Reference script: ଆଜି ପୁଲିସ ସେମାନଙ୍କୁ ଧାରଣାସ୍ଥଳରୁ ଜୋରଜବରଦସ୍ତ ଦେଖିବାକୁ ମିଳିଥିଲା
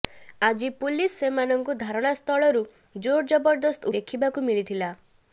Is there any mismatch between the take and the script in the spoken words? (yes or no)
no